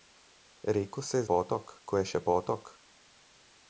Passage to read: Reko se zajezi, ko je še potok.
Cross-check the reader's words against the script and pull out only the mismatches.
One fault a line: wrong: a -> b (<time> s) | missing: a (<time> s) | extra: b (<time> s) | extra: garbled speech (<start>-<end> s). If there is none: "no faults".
wrong: zajezi -> potok (1.3 s)